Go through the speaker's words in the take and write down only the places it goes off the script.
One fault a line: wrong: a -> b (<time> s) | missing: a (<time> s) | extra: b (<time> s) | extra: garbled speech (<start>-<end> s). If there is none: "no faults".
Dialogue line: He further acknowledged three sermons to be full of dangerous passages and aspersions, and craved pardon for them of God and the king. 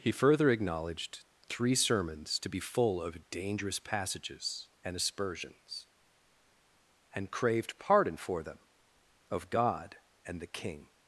no faults